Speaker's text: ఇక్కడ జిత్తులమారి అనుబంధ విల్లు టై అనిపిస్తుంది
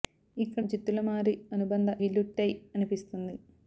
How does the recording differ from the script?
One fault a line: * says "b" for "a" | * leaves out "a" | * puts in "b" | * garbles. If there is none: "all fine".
all fine